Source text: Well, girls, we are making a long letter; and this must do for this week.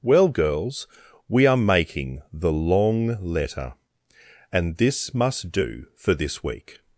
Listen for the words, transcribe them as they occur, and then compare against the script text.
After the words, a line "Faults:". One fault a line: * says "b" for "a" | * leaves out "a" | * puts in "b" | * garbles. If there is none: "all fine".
Well, girls, we are making the long letter; and this must do for this week.
Faults:
* says "the" for "a"